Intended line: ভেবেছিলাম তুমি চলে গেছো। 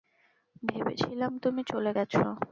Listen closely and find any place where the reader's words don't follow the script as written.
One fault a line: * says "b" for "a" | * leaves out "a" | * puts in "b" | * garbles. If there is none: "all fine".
all fine